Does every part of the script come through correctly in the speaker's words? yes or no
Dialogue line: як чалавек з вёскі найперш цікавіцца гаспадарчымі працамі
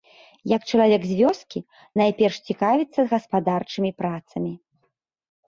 yes